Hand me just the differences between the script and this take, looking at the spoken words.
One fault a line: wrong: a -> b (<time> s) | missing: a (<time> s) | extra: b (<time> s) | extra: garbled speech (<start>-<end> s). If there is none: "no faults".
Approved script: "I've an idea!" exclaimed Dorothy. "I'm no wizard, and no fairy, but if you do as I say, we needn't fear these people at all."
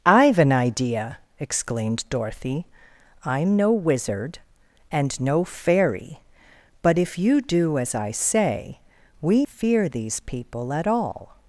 missing: needn't (9.4 s)